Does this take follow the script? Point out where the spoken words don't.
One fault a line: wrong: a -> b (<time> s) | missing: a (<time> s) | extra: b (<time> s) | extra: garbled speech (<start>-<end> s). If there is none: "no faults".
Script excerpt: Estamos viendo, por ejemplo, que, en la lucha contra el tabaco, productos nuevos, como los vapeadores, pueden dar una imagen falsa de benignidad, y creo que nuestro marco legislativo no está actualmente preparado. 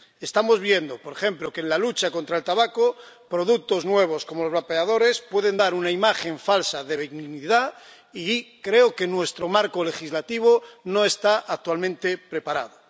no faults